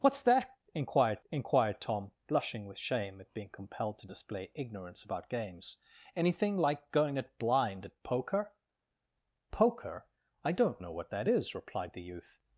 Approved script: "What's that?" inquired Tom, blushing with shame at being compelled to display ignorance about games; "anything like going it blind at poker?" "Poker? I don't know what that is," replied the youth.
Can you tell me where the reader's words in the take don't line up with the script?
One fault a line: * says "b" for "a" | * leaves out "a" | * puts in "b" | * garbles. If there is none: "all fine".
* puts in "inquired"